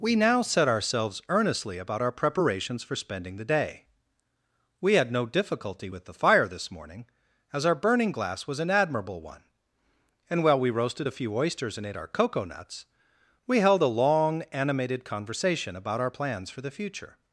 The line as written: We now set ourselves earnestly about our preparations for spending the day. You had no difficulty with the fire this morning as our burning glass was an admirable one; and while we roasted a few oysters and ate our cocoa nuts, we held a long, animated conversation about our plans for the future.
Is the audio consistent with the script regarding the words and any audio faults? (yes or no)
no